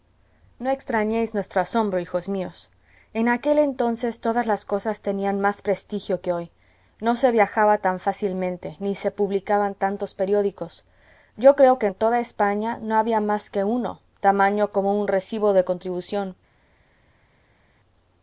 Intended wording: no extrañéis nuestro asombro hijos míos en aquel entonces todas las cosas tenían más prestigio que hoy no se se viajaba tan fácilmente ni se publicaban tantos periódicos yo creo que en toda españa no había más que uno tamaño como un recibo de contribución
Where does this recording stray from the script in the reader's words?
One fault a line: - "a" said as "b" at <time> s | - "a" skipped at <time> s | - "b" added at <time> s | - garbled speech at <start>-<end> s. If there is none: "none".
- "se" skipped at 7.3 s